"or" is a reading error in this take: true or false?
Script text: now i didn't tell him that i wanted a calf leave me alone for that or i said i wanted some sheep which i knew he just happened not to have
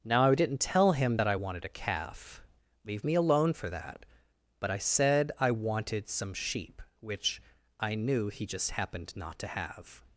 true